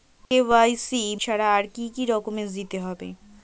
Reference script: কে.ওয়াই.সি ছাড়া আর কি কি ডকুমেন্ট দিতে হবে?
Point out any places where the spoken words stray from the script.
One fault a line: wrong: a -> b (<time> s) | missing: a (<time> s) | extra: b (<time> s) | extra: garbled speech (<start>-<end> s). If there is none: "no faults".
no faults